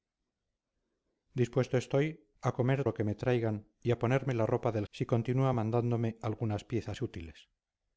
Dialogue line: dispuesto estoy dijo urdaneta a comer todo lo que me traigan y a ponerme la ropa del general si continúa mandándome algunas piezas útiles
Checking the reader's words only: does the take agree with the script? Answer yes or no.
no